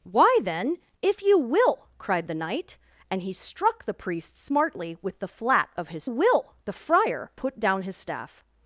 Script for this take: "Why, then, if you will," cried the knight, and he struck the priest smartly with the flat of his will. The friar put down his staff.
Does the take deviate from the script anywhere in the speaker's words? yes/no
no